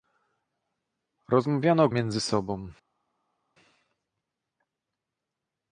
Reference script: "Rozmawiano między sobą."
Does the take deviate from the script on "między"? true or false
false